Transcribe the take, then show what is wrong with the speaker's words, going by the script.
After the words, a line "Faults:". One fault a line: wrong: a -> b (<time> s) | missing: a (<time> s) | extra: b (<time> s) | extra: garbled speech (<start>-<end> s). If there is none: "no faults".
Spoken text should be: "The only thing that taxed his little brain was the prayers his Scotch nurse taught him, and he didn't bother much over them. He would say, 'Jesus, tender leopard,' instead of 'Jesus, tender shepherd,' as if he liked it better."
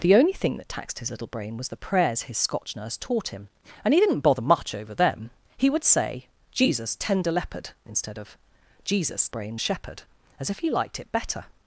"The only thing that taxed his little brain was the prayers his Scotch nurse taught him, and he didn't bother much over them. He would say, 'Jesus, tender leopard,' instead of 'Jesus, brain shepherd,' as if he liked it better."
Faults:
wrong: tender -> brain (9.3 s)